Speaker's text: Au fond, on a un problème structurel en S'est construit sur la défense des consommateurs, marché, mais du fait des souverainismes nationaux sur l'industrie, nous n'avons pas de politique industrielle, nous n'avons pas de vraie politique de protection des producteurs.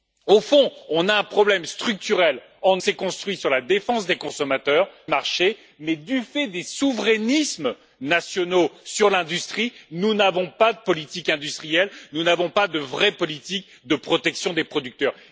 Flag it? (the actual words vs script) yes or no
no